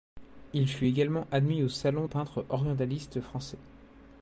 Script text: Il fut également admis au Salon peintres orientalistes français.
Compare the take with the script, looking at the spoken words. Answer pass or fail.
pass